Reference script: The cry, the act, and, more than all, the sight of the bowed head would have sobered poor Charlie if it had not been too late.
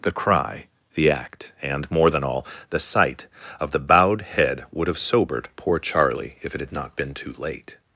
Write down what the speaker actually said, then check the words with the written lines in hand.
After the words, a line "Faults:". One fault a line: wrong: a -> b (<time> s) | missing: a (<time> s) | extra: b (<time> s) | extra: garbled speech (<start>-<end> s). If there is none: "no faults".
The cry, the act, and, more than all, the sight of the bowed head would have sobered poor Charlie if it had not been too late.
Faults:
no faults